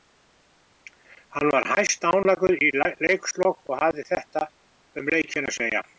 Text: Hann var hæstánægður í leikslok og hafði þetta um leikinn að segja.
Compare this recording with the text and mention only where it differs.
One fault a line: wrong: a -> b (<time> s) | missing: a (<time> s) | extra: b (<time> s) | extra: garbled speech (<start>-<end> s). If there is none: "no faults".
no faults